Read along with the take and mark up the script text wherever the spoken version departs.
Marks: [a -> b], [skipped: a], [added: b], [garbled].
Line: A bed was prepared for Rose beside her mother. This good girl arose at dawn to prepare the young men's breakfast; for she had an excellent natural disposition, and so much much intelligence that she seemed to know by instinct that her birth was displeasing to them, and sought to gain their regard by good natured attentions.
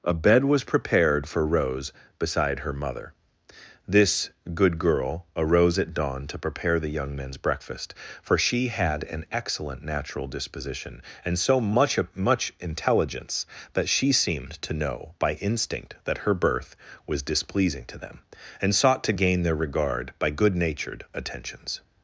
A bed was prepared for Rose beside her mother. This good girl arose at dawn to prepare the young men's breakfast; for she had an excellent natural disposition, and so much much intelligence that she seemed to know by instinct that her birth was displeasing to them, and sought to gain their regard by good natured attentions.